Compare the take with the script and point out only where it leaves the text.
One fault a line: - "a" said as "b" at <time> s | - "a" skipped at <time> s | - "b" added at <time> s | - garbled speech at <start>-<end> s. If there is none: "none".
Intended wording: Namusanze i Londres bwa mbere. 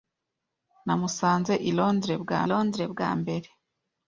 - "Londres bwa" added at 2.5 s